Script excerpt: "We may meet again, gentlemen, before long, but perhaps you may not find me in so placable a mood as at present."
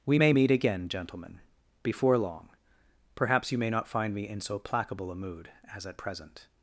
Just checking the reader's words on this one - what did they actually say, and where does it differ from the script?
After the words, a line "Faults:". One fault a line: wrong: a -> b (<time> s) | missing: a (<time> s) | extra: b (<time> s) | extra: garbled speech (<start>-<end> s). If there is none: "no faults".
"We may meet again, gentlemen, before long, perhaps you may not find me in so placable a mood as at present."
Faults:
missing: but (2.5 s)